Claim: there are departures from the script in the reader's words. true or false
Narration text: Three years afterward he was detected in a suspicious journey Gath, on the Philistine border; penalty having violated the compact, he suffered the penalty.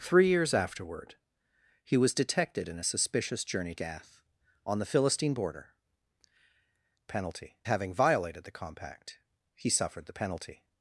false